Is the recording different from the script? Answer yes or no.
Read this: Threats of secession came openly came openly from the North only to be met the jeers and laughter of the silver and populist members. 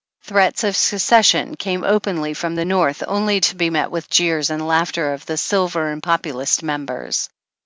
yes